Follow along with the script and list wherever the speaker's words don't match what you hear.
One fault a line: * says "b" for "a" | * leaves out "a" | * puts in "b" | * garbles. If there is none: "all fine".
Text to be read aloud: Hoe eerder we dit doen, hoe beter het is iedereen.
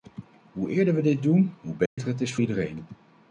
all fine